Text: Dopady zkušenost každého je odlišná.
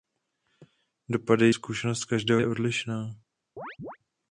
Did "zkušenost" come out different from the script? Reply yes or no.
no